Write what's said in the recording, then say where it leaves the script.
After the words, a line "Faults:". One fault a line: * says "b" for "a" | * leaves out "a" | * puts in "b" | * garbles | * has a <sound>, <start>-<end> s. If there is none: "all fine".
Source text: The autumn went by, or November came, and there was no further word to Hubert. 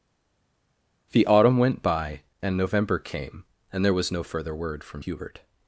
The autumn went by, and November came, and there was no further word from Hubert.
Faults:
* says "and" for "or"
* says "from" for "to"